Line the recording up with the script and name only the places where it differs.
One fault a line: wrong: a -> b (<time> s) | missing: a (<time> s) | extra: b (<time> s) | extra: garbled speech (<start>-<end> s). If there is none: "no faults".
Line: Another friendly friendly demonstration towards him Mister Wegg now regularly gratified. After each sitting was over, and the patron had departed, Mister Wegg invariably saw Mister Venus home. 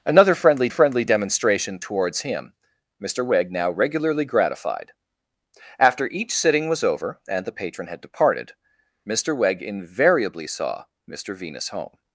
no faults